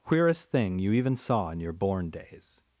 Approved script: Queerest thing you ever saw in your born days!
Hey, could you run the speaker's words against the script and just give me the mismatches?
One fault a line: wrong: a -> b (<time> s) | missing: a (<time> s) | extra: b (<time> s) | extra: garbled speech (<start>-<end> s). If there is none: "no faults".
wrong: ever -> even (0.9 s)